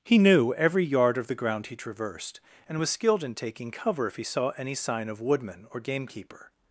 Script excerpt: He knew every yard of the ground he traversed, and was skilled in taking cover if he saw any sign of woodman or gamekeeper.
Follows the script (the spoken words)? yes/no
yes